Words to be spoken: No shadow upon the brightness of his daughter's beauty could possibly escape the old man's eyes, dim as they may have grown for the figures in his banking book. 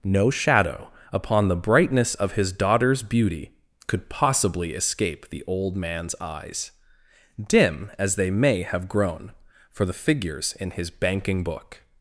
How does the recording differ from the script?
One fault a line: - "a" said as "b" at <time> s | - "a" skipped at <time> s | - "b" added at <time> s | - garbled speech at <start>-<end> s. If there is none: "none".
none